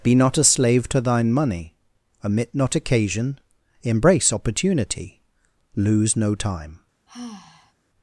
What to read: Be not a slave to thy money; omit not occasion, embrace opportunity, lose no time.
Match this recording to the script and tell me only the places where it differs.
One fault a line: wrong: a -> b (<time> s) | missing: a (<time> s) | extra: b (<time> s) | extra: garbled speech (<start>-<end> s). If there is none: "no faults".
wrong: thy -> thine (1.0 s)